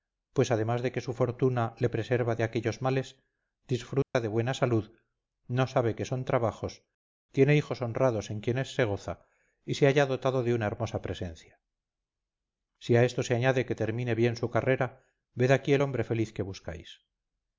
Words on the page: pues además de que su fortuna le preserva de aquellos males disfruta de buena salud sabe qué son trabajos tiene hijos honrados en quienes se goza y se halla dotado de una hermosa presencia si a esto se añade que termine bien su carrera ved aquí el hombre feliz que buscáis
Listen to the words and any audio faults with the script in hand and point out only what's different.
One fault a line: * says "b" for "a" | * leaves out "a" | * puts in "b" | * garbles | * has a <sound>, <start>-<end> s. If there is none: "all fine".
* has a dropout, 4.0-4.1 s
* puts in "no"